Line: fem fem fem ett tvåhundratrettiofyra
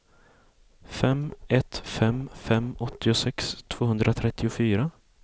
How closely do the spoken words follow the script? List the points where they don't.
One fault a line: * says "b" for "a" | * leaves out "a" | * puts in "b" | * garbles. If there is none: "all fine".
* puts in "ett"
* says "åttiosex" for "ett"